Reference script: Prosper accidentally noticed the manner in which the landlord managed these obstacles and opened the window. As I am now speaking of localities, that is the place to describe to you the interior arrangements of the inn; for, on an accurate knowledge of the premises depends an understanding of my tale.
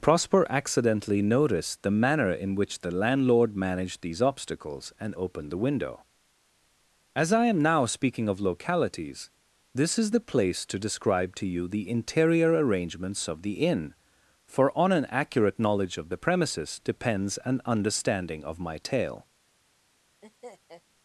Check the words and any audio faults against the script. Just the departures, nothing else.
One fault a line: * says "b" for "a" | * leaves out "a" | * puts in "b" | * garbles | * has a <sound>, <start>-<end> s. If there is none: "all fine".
* says "this" for "that"
* has a laugh, 20.2-20.8 s